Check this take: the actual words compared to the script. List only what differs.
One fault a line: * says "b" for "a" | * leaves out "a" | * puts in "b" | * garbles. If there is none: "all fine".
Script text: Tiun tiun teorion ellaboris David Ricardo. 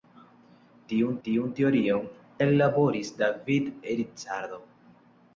all fine